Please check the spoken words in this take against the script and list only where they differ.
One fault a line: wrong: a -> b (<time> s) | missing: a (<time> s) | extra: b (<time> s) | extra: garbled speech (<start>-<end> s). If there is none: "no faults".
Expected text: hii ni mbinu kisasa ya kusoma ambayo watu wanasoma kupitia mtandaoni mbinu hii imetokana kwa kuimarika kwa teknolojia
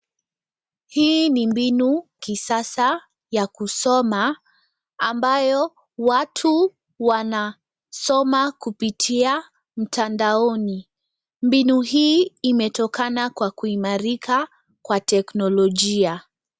no faults